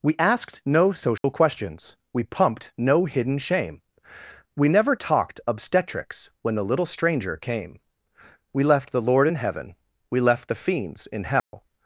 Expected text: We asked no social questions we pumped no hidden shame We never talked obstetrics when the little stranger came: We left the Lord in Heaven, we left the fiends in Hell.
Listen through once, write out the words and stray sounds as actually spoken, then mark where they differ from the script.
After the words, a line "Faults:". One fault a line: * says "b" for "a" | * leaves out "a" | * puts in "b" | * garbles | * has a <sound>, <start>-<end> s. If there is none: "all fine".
We asked no social questions we pumped no hidden shame We never talked obstetrics when the little stranger came: We left the Lord in Heaven, we left the fiends in Hell.
Faults:
* has a dropout, 1.2-1.2 s
* has a dropout, 11.4-11.5 s